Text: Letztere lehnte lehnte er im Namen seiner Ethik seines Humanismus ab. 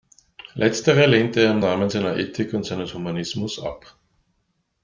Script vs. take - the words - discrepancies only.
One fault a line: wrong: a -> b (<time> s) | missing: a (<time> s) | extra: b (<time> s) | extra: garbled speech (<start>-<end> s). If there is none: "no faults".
missing: lehnte (1.4 s)
extra: und (2.5 s)